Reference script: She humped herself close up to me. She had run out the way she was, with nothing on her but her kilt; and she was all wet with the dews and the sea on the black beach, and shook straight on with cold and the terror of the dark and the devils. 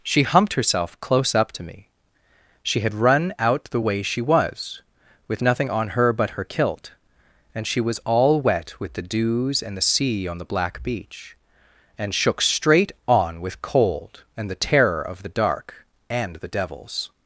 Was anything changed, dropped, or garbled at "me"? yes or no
no